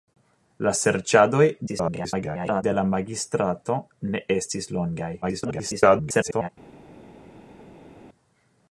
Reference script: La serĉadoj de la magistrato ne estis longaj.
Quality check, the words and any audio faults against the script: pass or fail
fail